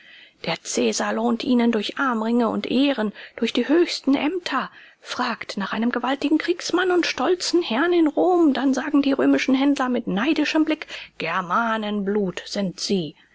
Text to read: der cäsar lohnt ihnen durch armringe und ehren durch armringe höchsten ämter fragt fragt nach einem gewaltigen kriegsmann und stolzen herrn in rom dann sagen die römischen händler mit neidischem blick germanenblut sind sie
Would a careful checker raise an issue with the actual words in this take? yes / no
yes